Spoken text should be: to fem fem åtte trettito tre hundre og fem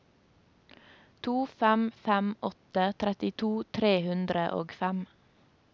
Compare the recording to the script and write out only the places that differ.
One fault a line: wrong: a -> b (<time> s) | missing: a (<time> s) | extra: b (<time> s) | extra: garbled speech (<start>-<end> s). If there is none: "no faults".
no faults